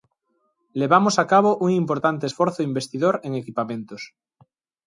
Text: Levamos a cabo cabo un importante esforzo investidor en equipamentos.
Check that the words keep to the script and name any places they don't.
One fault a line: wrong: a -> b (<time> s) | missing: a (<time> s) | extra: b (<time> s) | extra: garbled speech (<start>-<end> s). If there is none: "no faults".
missing: cabo (1.5 s)